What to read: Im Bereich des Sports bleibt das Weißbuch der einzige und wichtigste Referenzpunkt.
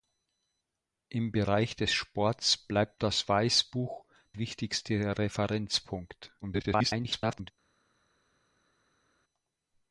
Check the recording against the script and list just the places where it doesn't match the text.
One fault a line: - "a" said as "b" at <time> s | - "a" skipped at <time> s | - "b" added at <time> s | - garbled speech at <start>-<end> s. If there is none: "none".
- "der einzige und" skipped at 4.1 s
- garbled speech at 6.4-7.5 s